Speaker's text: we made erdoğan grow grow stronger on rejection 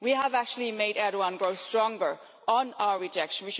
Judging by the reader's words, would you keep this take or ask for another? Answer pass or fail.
fail